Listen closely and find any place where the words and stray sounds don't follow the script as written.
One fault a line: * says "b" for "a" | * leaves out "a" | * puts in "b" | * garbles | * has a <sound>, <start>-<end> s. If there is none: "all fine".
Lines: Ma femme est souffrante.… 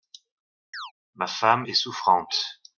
* has a chirp, 0.7-0.9 s